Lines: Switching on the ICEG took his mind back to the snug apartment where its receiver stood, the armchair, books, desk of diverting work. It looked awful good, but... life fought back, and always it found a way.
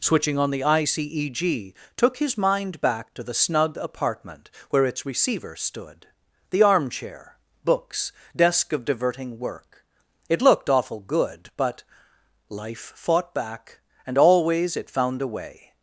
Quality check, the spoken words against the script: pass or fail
pass